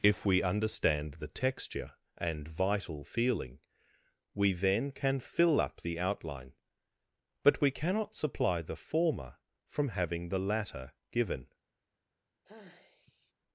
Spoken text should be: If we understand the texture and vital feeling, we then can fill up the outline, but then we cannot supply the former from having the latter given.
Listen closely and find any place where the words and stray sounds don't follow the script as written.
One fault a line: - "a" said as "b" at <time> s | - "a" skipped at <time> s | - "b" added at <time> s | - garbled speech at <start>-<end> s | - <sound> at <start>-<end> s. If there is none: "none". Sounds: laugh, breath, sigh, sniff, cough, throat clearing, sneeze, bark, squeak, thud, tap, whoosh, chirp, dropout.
- "then" skipped at 7.6 s
- sigh at 12.4-13.3 s